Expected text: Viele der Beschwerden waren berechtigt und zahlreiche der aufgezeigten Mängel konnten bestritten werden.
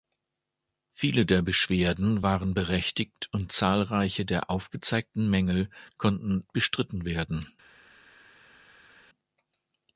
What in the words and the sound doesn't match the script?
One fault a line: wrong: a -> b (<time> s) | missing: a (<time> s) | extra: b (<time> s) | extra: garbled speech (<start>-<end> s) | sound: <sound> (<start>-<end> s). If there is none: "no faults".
no faults